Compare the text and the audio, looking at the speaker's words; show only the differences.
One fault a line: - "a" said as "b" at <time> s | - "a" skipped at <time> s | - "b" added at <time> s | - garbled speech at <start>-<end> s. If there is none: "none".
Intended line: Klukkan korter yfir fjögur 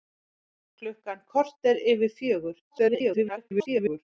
- garbled speech at 2.7-4.0 s